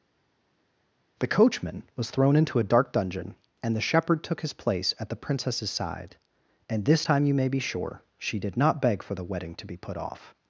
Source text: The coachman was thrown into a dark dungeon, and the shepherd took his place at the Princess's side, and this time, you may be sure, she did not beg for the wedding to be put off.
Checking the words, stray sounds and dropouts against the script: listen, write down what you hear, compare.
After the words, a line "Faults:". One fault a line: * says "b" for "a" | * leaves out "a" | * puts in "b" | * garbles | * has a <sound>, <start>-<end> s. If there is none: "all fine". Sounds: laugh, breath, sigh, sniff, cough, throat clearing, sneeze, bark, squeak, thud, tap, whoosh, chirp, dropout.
The coachman was thrown into a dark dungeon, and the shepherd took his place at the Princess's side, and this time, you may be sure, she did not beg for the wedding to be put off.
Faults:
all fine